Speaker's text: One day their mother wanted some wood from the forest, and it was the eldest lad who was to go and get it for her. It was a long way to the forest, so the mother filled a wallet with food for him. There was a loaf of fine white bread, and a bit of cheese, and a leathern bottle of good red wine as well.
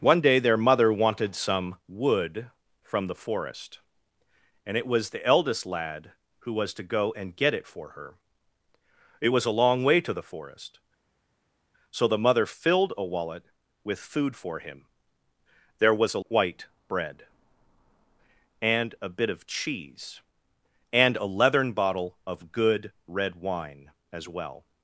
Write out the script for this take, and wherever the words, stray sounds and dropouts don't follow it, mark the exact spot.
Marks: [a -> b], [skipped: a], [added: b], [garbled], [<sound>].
One day their mother wanted some wood from the forest, and it was the eldest lad who was to go and get it for her. It was a long way to the forest, so the mother filled a wallet with food for him. There was a [skipped: loaf of fine] white bread, and a bit of cheese, and a leathern bottle of good red wine as well.